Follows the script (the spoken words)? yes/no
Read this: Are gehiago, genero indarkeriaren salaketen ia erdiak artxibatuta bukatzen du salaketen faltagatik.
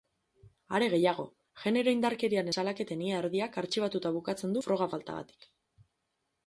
no